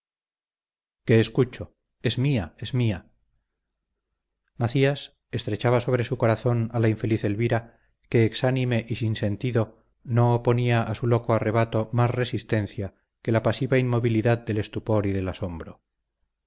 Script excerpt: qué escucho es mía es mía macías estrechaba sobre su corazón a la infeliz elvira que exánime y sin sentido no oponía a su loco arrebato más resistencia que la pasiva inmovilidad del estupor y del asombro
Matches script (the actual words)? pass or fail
pass